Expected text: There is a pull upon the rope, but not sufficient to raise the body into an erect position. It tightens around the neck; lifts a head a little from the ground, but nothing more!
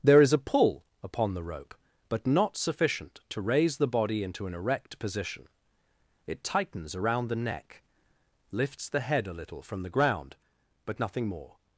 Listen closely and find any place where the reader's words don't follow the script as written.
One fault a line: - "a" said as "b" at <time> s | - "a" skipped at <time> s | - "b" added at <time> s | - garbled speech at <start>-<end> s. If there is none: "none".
- "a" said as "the" at 8.9 s